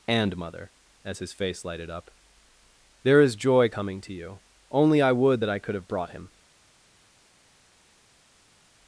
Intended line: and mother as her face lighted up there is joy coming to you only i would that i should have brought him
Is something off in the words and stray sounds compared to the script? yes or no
yes